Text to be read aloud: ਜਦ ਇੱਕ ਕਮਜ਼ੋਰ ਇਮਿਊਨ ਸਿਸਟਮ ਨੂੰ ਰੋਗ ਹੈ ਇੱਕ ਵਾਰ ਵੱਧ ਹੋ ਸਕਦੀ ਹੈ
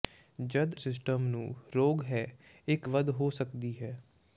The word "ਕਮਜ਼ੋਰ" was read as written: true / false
false